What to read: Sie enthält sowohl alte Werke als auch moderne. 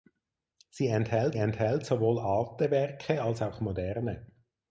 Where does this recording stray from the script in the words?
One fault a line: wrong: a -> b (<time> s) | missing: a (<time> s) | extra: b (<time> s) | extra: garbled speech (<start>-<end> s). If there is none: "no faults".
extra: enthält (1.3 s)